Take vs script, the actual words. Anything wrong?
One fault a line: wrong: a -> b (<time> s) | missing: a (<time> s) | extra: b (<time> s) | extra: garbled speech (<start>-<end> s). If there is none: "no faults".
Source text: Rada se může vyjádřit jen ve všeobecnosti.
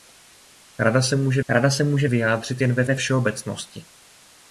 extra: rada se může (1.5 s)
extra: ve (2.8 s)